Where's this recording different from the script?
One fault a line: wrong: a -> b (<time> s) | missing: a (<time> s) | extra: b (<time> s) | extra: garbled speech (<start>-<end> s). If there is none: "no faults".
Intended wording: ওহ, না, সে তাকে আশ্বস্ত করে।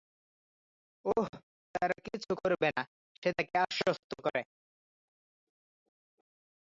extra: তারা কিছু করবে (1.8 s)